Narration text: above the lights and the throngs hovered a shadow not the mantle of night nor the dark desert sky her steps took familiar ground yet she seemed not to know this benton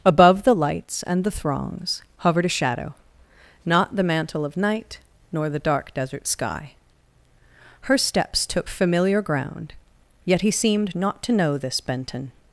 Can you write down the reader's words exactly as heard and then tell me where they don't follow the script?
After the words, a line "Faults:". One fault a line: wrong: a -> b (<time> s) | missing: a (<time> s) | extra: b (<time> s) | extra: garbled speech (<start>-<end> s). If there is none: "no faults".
above the lights and the throngs hovered a shadow not the mantle of night nor the dark desert sky her steps took familiar ground yet he seemed not to know this benton
Faults:
wrong: she -> he (10.4 s)